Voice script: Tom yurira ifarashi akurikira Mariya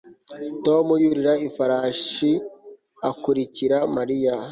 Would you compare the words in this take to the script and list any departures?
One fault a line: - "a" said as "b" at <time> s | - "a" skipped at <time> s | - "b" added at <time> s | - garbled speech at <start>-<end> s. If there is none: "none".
none